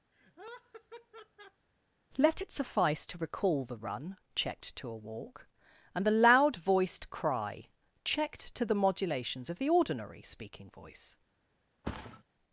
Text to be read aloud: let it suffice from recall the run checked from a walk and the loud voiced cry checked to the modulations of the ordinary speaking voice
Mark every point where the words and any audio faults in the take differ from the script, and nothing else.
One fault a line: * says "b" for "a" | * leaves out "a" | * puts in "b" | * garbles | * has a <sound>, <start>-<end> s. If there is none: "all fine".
* has a laugh, 0.1-1.7 s
* says "to" for "from"
* says "to" for "from"
* has a thud, 11.8-12.2 s